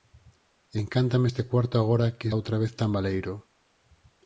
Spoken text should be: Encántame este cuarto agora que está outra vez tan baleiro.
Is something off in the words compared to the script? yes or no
yes